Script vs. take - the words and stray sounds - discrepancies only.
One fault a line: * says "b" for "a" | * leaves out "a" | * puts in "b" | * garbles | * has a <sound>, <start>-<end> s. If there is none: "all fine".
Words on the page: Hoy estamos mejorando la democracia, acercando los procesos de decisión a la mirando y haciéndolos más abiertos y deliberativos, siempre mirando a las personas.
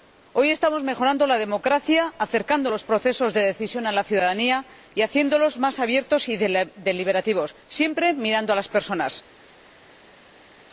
* says "ciudadanía" for "mirando"